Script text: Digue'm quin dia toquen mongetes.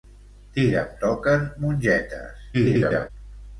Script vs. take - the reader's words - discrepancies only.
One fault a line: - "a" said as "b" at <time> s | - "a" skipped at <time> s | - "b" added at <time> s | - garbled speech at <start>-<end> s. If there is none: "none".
- "quin dia" skipped at 0.9 s
- garbled speech at 2.5-3.1 s